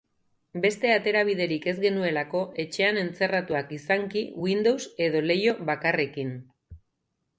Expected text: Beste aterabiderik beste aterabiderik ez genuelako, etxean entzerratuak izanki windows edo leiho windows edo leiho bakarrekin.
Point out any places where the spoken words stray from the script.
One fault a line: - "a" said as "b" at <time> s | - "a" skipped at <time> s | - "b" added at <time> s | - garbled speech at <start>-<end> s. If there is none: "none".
- "beste aterabiderik" skipped at 1.7 s
- "windows edo leiho" skipped at 5.6 s